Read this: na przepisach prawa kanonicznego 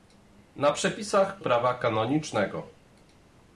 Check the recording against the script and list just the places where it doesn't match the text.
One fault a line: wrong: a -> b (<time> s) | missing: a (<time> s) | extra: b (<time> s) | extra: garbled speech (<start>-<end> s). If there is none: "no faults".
no faults